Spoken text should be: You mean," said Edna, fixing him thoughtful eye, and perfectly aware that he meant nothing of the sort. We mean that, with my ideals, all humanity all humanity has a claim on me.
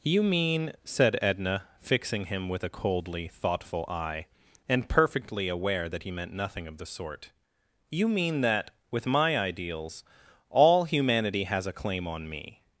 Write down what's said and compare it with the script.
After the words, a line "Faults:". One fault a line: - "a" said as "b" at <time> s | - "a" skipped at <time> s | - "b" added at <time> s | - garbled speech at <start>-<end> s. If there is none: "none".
You mean," said Edna, fixing him with a coldly thoughtful eye, and perfectly aware that he meant nothing of the sort. You mean that, with my ideals, all humanity has a claim on me.
Faults:
- "with a coldly" added at 2.5 s
- "We" said as "You" at 7.9 s
- "all humanity" skipped at 11.4 s